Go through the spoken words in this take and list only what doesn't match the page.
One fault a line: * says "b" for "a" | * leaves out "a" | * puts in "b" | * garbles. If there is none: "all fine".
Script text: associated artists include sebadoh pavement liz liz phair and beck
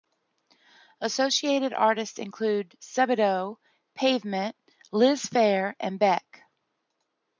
* leaves out "liz"